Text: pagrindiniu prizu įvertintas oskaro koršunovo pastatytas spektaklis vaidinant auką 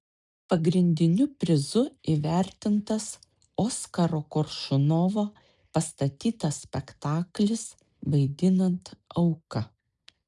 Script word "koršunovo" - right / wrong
right